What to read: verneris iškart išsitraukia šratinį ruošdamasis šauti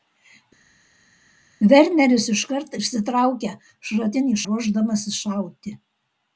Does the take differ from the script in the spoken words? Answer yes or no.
no